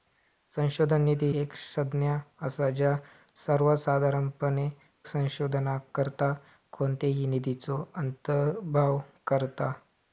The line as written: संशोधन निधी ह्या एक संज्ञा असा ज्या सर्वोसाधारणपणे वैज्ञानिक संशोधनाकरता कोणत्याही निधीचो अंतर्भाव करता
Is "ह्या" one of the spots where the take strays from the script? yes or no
yes